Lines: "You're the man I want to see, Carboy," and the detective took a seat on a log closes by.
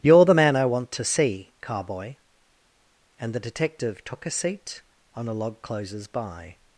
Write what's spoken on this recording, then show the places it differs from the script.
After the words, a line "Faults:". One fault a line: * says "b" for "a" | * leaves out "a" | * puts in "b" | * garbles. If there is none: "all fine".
"You're the man I want to see, Carboy," and the detective took a seat on a log closes by.
Faults:
all fine